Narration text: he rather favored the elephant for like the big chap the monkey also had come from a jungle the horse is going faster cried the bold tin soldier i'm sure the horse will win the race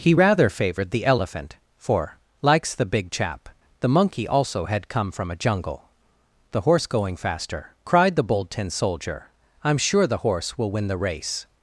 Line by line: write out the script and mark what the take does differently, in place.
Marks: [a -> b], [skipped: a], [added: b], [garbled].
he rather favored the elephant for [like -> likes] the big chap the monkey also had come from a jungle the horse [skipped: is] going faster cried the bold tin soldier i'm sure the horse will win the race